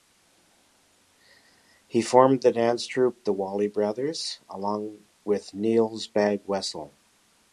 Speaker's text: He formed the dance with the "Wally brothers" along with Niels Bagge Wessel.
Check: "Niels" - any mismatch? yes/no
no